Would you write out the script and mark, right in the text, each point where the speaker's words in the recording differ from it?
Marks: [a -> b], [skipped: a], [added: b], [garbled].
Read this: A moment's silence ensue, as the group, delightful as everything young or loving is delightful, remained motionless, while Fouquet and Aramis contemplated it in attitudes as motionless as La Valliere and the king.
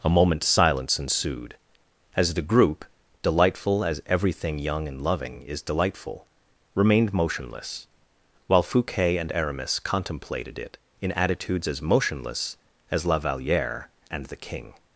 A moment's silence [ensue, -> ensued] as the group, delightful as everything young [or -> and] loving is delightful, remained motionless, while Fouquet and Aramis contemplated it in attitudes as motionless as La Valliere and the king.